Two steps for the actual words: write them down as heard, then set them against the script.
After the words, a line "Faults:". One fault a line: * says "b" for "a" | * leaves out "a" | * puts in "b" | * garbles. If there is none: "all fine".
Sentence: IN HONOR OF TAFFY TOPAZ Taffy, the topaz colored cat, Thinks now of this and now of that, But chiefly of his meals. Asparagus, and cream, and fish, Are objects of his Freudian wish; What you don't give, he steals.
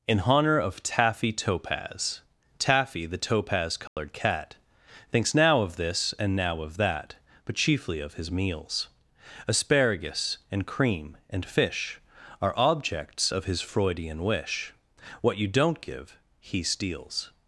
IN HONOR OF TAFFY TOPAZ Taffy, the topaz colored cat, Thinks now of this and now of that, But chiefly of his meals. Asparagus, and cream, and fish, Are objects of his Freudian wish; What you don't give, he steals.
Faults:
all fine